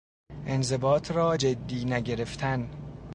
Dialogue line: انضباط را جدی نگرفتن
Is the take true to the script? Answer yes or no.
yes